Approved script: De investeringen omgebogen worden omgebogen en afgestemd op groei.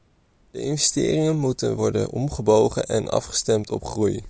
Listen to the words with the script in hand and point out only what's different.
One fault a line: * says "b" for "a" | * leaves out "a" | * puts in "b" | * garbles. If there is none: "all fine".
* says "moeten" for "omgebogen"